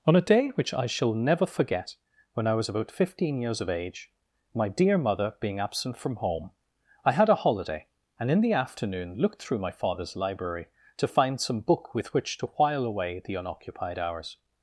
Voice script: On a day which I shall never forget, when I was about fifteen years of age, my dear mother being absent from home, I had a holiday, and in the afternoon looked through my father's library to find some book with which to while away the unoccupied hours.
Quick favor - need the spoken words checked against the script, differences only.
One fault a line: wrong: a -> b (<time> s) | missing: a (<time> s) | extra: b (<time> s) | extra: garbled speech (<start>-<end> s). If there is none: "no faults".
no faults